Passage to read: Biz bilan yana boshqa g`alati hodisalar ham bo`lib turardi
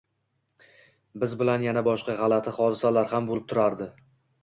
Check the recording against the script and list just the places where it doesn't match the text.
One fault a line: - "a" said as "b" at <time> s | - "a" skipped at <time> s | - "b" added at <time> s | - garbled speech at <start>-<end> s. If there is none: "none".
none